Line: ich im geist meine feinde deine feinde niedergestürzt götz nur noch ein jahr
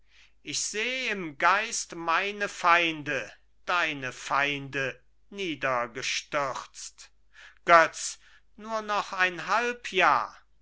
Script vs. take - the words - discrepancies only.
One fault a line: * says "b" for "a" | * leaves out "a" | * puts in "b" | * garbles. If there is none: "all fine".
* puts in "seh"
* puts in "halb"